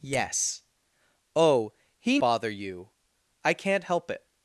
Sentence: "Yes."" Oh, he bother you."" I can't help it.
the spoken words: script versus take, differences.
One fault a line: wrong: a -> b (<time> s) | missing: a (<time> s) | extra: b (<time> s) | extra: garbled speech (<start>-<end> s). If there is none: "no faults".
no faults